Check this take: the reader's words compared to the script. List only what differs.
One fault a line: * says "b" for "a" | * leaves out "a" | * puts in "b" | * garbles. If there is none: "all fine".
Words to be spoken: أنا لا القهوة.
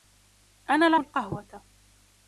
all fine